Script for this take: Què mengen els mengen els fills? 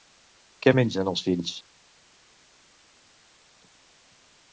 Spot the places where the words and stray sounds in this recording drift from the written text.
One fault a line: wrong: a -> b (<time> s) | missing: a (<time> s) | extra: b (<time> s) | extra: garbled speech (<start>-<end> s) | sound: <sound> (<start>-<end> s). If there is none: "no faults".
missing: mengen els (1.3 s)